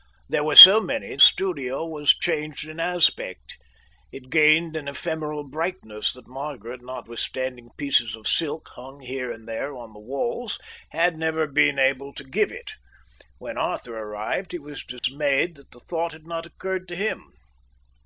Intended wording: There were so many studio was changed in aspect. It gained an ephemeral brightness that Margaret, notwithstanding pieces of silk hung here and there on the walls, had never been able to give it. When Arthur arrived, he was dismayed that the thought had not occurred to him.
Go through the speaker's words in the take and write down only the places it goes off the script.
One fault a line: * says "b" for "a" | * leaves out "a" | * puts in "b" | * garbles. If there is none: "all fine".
all fine